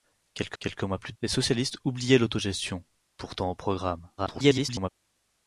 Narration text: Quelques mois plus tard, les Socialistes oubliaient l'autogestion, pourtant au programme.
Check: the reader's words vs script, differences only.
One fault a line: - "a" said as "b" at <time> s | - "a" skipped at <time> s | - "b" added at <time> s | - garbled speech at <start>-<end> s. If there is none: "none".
- "quelques" added at 0.6 s
- "tard" skipped at 1.1 s
- garbled speech at 4.2-4.9 s